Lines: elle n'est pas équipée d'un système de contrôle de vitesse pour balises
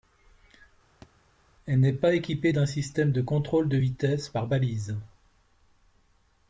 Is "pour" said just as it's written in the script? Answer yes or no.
no